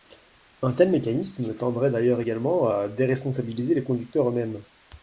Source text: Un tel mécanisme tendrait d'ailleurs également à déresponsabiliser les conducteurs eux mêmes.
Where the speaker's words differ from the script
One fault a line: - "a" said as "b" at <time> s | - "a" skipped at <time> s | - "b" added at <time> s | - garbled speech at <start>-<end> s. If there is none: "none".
none